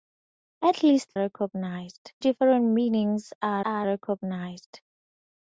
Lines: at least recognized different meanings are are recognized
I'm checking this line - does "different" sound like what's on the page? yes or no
yes